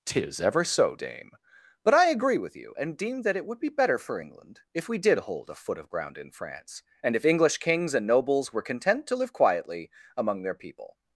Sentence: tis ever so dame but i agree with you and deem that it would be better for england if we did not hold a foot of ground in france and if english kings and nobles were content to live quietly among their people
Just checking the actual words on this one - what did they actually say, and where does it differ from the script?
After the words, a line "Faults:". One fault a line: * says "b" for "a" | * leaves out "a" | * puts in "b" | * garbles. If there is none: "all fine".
tis ever so dame but i agree with you and deem that it would be better for england if we did hold a foot of ground in france and if english kings and nobles were content to live quietly among their people
Faults:
* leaves out "not"